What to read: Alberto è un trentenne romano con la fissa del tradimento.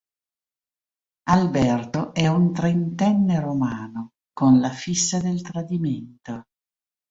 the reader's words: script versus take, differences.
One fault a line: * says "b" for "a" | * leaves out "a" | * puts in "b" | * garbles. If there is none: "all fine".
all fine